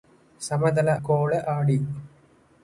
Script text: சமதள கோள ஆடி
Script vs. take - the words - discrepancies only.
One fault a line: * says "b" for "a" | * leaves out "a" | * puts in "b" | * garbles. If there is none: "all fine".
all fine